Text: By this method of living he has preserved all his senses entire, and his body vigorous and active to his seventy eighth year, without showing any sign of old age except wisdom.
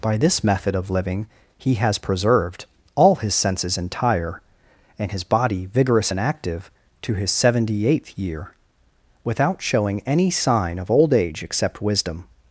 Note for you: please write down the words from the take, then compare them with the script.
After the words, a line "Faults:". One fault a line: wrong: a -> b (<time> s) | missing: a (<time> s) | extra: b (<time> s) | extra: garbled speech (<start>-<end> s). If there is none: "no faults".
By this method of living he has preserved all his senses entire, and his body vigorous and active to his seventy eighth year, without showing any sign of old age except wisdom.
Faults:
no faults